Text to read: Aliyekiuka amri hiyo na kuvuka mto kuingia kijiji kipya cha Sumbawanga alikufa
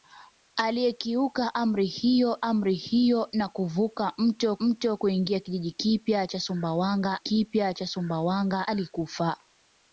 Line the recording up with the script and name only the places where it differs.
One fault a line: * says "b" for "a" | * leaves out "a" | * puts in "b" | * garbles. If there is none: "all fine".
* puts in "amri hiyo"
* puts in "mto"
* puts in "kipya cha Sumbawanga"